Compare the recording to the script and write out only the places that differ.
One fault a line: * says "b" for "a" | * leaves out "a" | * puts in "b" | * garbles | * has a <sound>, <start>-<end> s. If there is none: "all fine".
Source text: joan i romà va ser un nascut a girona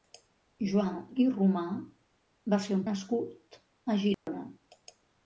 * has a dropout, 4.1-4.3 s